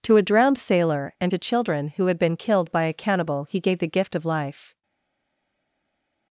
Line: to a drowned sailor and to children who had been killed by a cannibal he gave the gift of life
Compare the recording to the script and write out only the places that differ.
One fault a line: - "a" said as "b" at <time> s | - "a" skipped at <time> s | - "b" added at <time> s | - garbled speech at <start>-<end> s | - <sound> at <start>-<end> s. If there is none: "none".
none